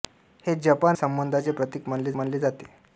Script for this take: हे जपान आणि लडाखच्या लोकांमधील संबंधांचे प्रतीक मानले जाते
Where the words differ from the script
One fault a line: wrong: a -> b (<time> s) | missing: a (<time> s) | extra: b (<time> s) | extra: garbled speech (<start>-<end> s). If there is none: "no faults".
missing: आणि लडाखच्या लोकांमधील (1.0 s)
extra: मानले (2.2 s)